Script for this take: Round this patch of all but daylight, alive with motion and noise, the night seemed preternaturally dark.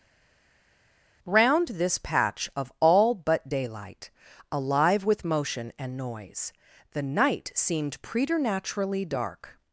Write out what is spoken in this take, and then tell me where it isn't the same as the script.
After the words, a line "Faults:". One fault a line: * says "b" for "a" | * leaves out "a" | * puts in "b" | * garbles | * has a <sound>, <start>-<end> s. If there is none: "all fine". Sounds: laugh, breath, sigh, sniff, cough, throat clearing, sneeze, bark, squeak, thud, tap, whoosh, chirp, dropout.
Round this patch of all but daylight, alive with motion and noise, the night seemed preternaturally dark.
Faults:
all fine